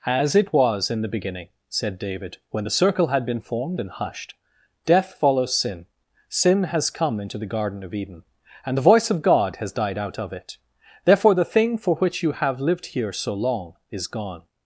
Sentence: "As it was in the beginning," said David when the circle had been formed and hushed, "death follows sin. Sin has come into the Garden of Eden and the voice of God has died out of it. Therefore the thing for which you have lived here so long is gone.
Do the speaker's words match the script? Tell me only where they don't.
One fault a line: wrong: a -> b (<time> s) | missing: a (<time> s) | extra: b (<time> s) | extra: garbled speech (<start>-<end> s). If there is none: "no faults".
no faults